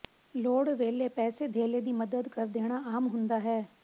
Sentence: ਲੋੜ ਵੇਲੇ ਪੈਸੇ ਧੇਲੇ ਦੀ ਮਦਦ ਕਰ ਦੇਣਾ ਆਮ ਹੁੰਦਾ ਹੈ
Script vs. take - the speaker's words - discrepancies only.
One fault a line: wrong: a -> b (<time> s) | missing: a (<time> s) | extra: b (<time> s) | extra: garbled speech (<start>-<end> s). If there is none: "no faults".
no faults